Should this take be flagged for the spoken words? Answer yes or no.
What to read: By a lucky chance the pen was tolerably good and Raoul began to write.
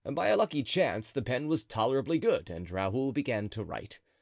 no